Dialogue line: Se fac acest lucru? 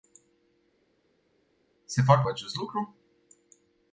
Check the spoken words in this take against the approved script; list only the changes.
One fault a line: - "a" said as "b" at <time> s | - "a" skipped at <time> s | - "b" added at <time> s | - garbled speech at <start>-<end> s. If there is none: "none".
none